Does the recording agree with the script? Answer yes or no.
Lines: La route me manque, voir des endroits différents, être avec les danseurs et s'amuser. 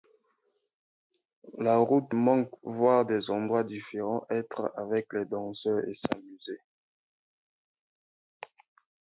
no